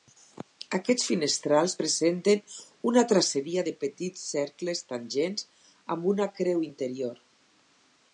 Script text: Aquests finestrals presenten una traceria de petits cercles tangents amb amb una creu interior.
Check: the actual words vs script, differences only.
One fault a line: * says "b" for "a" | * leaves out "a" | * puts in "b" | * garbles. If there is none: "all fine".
* leaves out "amb"